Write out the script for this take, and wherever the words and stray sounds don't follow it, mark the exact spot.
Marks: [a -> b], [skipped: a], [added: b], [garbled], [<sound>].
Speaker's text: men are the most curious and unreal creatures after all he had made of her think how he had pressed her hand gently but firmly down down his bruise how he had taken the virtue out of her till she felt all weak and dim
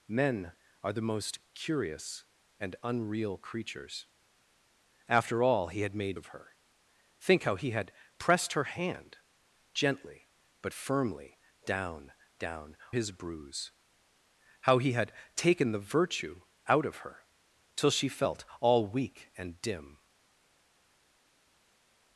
men are the most curious and unreal creatures after all he had made of her think how he had pressed her hand gently but firmly down down his bruise how he had taken the virtue out of her till she felt all weak and dim